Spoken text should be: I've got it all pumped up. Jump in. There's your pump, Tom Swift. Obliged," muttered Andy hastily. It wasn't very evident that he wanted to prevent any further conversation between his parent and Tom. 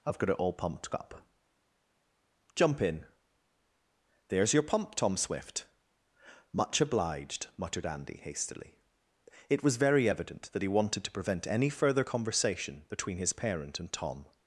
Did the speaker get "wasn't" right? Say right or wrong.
wrong